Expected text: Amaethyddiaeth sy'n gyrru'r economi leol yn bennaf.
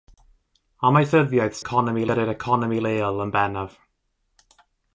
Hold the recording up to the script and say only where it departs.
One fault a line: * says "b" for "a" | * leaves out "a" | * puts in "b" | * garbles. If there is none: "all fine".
* says "economi" for "sy'n"